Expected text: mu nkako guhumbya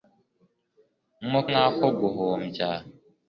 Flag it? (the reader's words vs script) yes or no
no